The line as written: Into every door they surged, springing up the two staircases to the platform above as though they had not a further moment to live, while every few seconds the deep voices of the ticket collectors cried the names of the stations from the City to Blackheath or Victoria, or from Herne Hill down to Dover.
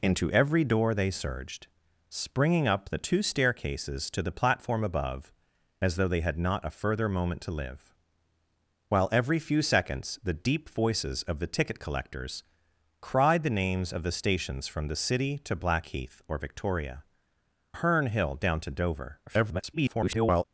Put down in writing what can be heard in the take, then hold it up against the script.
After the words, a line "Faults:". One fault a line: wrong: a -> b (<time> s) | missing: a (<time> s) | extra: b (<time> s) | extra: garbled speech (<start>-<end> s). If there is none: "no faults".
Into every door they surged, springing up the two staircases to the platform above as though they had not a further moment to live, while every few seconds the deep voices of the ticket collectors cried the names of the stations from the City to Blackheath or Victoria, Herne Hill down to Dover. [garbled]
Faults:
missing: or from (17.0 s)
extra: garbled speech (19.3-20.4 s)